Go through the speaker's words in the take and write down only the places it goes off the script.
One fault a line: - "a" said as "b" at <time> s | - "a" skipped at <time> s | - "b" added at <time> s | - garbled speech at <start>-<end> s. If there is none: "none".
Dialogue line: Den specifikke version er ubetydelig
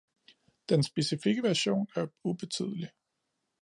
none